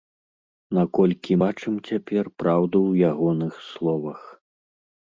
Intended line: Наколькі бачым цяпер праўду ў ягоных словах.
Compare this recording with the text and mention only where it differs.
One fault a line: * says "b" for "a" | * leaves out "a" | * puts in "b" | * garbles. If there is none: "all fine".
all fine